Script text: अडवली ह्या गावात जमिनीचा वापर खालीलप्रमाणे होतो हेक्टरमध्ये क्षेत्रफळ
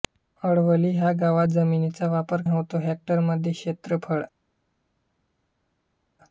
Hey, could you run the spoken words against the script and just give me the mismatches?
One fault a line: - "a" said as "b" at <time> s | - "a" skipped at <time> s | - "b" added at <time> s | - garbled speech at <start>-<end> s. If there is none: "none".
- "खालीलप्रमाणे" skipped at 2.4 s